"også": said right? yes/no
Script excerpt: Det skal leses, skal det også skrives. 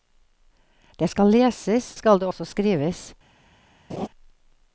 yes